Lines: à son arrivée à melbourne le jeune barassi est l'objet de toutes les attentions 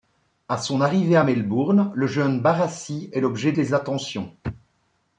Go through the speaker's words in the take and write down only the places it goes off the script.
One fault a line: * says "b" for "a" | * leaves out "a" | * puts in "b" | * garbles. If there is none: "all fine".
* leaves out "de toutes"